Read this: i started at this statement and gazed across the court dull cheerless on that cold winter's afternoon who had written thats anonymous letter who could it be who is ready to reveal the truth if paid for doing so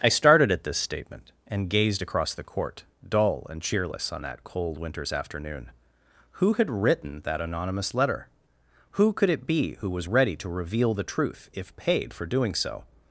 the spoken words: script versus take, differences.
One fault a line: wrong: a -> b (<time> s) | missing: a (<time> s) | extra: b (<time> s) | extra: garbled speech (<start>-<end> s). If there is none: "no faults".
extra: and (3.5 s)
wrong: thats -> that (7.2 s)
wrong: is -> was (9.9 s)